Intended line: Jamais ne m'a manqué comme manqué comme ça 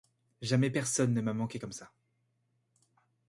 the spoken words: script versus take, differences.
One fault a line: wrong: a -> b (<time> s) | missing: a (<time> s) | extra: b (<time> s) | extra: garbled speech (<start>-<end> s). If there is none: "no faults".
extra: personne (0.7 s)
missing: manqué comme (1.7 s)